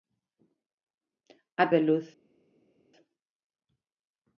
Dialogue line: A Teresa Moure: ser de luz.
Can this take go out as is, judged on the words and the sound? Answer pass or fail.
fail